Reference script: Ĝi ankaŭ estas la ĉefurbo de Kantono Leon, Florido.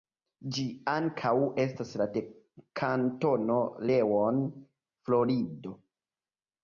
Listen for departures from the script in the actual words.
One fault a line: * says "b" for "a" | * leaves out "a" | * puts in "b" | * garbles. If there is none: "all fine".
* leaves out "ĉefurbo"